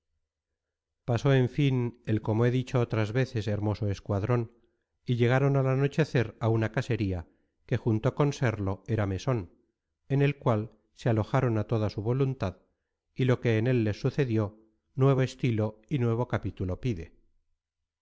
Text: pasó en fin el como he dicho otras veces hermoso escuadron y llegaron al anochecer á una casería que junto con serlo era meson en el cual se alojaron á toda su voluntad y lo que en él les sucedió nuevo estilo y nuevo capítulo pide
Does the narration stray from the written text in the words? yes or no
no